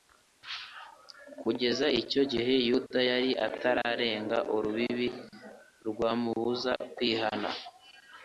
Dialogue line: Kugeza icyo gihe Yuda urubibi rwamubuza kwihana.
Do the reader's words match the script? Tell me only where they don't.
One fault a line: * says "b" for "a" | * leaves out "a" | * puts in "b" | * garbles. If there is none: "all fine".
* puts in "yari atararenga"